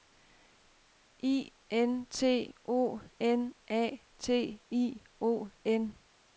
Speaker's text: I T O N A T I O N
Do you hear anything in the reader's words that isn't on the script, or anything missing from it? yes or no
yes